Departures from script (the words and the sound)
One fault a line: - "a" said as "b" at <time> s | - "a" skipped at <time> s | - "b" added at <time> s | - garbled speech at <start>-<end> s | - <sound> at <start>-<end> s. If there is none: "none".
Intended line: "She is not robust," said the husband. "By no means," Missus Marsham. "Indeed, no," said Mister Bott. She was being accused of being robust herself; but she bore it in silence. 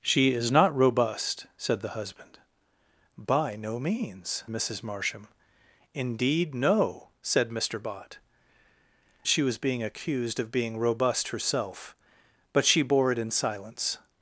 none